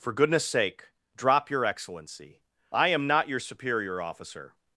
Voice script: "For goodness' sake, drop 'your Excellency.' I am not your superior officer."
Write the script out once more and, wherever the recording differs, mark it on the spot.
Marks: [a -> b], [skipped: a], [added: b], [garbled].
"For goodness' sake, drop 'your Excellency.' I am not your superior officer."